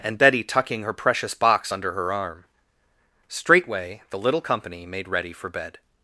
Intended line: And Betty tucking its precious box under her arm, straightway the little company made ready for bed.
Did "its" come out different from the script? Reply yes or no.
yes